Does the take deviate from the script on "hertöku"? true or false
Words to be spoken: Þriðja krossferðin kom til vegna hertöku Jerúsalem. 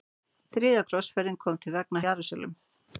true